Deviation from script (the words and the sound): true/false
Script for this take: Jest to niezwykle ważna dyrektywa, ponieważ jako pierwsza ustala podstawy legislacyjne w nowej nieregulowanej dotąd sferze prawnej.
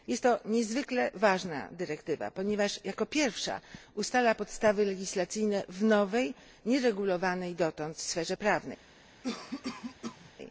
true